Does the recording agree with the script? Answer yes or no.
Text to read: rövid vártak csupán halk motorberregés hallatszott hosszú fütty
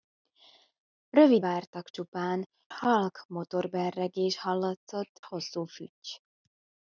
yes